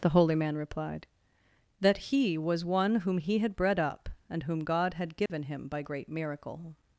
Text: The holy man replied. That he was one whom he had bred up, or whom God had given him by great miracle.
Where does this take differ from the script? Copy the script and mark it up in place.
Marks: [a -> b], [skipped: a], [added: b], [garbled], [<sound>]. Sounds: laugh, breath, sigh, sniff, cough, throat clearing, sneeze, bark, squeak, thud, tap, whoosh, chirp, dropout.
The holy man replied. That he was one whom he had bred up, [or -> and] whom God had given [dropout] him by great miracle.